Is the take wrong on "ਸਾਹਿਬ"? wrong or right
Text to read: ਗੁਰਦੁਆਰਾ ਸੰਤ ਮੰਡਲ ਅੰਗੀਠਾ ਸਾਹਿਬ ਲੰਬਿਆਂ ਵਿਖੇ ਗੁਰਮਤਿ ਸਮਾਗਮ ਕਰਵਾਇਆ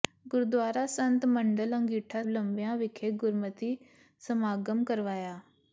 wrong